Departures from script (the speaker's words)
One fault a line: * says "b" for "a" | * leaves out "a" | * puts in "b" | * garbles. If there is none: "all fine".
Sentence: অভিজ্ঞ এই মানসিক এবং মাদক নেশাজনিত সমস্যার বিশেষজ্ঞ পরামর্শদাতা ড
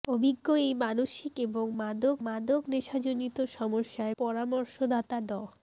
* puts in "মাদক"
* leaves out "বিশেষজ্ঞ"